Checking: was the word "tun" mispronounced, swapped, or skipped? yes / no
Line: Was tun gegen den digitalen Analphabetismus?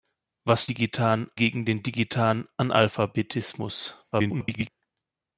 yes